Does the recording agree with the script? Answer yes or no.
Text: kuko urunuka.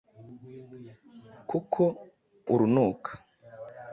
yes